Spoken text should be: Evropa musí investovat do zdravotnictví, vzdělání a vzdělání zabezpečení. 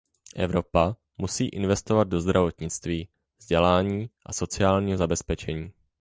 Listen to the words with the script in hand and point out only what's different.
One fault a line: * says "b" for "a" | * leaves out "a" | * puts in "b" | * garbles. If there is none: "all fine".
* says "sociálního" for "vzdělání"